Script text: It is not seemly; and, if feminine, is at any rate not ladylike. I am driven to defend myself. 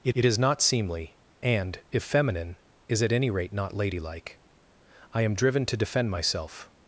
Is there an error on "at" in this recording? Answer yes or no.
no